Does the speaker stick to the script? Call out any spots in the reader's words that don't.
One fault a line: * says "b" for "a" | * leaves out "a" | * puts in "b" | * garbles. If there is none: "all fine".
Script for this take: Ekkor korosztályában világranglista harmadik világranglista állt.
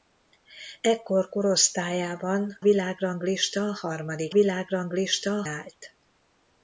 all fine